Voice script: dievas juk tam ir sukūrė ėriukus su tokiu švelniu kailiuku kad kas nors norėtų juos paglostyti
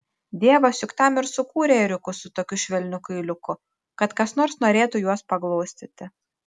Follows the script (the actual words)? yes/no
yes